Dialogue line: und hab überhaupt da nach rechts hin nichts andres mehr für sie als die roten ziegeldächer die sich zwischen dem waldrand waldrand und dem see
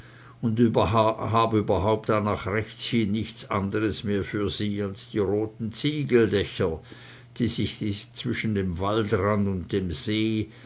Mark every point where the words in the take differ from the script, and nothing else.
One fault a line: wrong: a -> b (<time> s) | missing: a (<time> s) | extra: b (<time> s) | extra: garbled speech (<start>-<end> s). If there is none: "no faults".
missing: waldrand (9.5 s)